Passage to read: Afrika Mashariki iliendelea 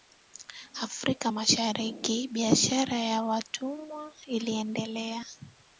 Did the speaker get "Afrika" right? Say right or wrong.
right